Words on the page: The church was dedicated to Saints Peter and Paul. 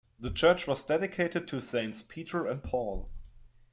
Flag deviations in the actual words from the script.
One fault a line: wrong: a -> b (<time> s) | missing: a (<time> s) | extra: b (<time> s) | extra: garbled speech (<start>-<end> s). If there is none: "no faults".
no faults